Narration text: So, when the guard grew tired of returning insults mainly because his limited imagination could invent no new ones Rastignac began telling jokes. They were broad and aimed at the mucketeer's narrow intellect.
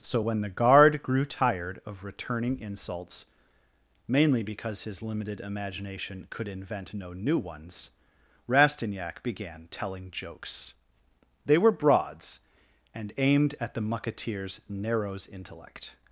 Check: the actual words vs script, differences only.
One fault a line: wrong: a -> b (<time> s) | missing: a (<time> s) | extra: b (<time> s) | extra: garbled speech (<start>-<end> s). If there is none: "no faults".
wrong: broad -> broads (11.7 s)
wrong: narrow -> narrows (14.7 s)